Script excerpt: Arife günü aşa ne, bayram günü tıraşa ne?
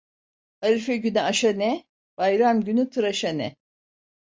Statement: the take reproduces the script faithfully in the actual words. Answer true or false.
true